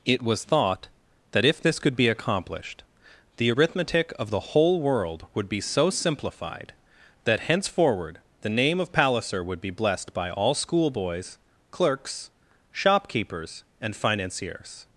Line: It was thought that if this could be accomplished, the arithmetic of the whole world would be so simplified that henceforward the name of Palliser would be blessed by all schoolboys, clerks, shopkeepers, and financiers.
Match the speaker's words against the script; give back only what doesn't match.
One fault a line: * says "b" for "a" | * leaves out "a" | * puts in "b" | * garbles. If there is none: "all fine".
all fine